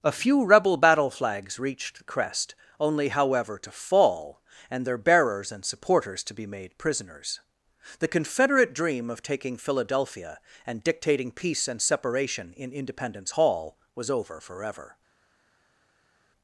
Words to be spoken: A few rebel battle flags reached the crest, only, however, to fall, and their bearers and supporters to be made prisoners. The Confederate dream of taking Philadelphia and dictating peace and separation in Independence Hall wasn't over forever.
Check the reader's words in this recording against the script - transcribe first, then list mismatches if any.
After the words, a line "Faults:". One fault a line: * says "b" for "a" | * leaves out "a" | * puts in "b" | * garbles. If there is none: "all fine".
A few rebel battle flags reached the crest, only, however, to fall, and their bearers and supporters to be made prisoners. The Confederate dream of taking Philadelphia and dictating peace and separation in Independence Hall was over forever.
Faults:
* says "was" for "wasn't"